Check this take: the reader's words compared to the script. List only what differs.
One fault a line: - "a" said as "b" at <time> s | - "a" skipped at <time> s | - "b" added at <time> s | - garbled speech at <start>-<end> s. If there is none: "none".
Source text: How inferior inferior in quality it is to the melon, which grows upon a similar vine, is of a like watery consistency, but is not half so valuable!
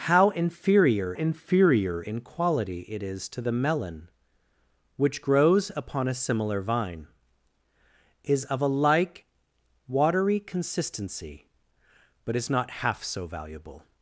none